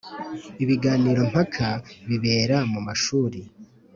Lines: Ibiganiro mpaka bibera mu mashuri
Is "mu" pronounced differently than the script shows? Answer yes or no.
no